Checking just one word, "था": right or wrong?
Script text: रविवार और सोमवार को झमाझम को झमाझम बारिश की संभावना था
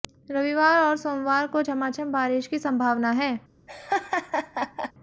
wrong